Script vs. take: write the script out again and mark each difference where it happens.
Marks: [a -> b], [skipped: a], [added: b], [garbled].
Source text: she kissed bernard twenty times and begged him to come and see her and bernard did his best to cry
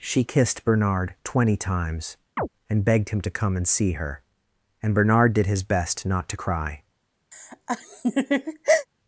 she kissed bernard twenty times and begged him to come and see her and bernard did his best [added: not] to cry